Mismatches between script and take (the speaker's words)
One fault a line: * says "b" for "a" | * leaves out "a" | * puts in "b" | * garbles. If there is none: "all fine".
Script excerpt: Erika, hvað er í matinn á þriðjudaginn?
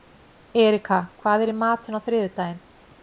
all fine